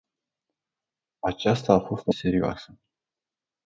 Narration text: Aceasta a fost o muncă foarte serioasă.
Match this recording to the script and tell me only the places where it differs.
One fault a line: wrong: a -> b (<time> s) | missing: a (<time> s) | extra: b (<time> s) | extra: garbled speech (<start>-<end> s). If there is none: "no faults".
missing: muncă foarte (2.1 s)